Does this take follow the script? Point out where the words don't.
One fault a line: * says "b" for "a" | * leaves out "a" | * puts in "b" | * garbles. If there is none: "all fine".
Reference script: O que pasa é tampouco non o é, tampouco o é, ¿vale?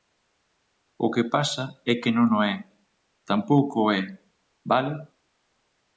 * says "que" for "tampouco"